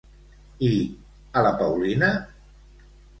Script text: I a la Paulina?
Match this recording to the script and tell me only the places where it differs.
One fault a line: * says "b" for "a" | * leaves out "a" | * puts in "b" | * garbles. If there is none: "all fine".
all fine